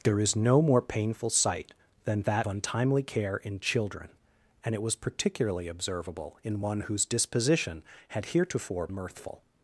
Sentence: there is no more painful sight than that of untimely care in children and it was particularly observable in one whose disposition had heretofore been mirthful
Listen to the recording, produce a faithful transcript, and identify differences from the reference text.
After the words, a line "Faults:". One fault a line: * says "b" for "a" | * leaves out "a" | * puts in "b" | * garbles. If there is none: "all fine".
there is no more painful sight than that untimely care in children and it was particularly observable in one whose disposition had heretofore mirthful
Faults:
* leaves out "of"
* leaves out "been"